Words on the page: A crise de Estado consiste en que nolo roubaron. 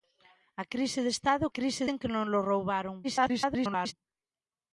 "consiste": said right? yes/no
no